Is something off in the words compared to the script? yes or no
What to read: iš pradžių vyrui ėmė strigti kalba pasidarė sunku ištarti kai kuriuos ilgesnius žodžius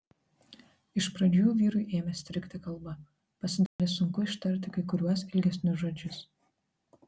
no